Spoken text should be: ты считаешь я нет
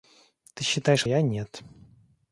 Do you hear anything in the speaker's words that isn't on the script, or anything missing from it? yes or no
no